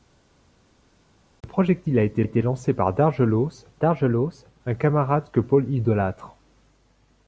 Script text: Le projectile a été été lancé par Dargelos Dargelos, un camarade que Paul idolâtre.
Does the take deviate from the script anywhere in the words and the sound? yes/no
no